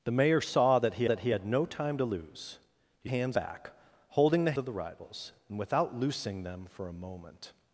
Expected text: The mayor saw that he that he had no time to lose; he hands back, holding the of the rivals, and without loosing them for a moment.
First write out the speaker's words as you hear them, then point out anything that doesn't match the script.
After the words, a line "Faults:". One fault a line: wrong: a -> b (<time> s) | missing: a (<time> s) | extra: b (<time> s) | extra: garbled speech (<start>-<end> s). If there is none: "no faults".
The mayor saw that he that he had no time to lose; he hands back, holding the of the rivals, and without loosing them for a moment.
Faults:
no faults